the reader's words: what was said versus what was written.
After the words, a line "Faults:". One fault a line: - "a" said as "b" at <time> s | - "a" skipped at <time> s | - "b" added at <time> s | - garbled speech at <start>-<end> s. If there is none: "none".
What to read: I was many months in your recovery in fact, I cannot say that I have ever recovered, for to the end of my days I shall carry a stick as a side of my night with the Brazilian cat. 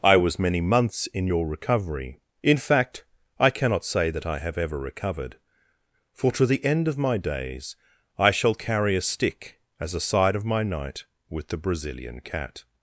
I was many months in your recovery in fact, I cannot say that I have ever recovered, for to the end of my days I shall carry a stick as a side of my night with the Brazilian cat.
Faults:
none